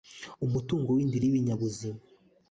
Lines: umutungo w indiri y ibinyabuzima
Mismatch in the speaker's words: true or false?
false